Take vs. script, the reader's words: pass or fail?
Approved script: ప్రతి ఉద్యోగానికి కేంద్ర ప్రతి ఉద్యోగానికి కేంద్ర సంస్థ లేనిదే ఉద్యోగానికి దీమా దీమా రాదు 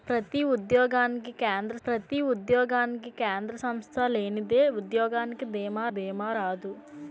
pass